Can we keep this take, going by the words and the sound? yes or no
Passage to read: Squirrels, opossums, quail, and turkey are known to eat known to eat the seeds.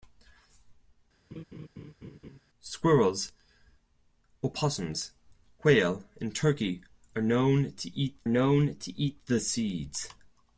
no